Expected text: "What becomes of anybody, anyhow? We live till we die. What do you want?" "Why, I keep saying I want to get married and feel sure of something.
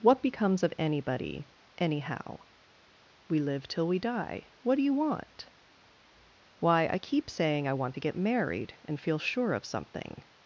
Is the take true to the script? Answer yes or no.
yes